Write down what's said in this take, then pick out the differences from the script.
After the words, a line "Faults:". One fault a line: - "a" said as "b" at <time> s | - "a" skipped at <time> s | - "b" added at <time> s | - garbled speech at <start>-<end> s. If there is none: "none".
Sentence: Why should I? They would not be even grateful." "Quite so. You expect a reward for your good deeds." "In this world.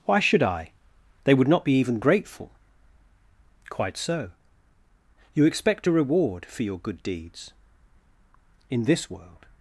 Why should I? They would not be even grateful." "Quite so. You expect a reward for your good deeds." "In this world.
Faults:
none